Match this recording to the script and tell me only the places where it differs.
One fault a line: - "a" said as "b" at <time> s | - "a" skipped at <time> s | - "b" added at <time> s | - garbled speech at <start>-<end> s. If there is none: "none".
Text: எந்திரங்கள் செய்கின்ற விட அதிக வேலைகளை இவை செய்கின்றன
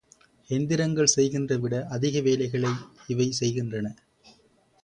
none